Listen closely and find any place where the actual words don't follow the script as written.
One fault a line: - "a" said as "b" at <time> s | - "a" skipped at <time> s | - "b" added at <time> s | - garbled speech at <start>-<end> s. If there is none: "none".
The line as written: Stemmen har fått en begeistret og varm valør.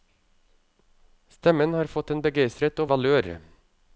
- "varm" skipped at 2.9 s